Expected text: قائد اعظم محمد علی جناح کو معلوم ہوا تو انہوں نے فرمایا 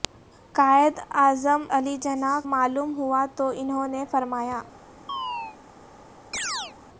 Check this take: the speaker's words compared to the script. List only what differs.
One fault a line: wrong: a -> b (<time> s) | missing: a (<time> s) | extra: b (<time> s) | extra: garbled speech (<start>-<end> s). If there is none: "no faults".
missing: محمد (1.6 s)
missing: کو (2.4 s)